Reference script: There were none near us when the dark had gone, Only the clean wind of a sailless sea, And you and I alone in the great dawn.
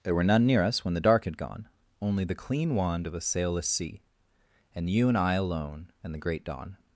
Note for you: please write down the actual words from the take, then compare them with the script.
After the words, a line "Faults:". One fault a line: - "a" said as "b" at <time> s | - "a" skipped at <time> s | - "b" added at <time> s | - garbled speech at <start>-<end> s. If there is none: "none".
There were none near us when the dark had gone, Only the clean wand of a sailless sea, And you and I alone and the great dawn.
Faults:
- "wind" said as "wand" at 2.8 s
- "in" said as "and" at 6.0 s